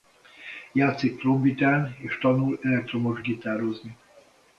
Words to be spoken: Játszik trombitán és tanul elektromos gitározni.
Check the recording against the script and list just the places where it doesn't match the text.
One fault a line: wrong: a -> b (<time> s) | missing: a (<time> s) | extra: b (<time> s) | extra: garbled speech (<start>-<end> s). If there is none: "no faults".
no faults